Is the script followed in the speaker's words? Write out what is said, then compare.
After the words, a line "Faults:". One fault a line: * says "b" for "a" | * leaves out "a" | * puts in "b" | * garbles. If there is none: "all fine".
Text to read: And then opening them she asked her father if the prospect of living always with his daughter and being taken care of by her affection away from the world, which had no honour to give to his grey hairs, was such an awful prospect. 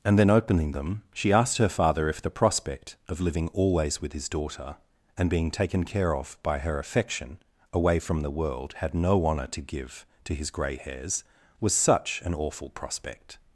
And then opening them she asked her father if the prospect of living always with his daughter and being taken care of by her affection away from the world, had no honour to give to his grey hairs, was such an awful prospect.
Faults:
* leaves out "which"